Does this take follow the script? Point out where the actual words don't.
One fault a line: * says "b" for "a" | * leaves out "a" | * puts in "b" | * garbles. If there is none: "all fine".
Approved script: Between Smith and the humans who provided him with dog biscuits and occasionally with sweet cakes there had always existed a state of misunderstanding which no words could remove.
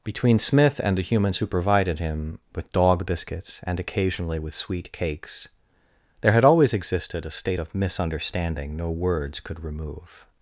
* leaves out "which"